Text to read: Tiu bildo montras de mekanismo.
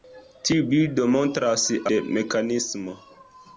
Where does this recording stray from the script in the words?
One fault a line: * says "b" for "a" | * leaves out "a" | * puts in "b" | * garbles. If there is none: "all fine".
all fine